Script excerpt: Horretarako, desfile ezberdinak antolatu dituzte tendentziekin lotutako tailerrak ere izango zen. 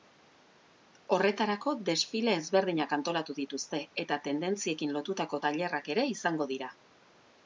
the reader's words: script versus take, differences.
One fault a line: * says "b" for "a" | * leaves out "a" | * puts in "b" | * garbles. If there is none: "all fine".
* puts in "eta"
* says "dira" for "zen"